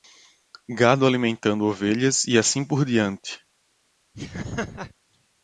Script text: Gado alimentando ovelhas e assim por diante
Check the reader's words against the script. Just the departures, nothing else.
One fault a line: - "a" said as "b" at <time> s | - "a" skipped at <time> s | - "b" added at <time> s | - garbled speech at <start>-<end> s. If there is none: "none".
none